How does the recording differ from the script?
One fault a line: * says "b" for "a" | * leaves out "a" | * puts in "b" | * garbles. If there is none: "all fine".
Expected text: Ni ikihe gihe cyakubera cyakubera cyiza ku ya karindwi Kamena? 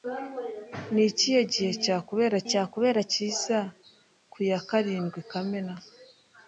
all fine